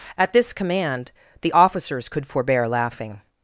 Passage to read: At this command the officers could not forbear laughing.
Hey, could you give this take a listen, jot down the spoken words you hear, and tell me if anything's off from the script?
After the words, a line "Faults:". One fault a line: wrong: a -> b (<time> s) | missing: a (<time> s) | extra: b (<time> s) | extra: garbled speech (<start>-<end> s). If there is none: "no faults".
At this command the officers could forbear laughing.
Faults:
missing: not (2.2 s)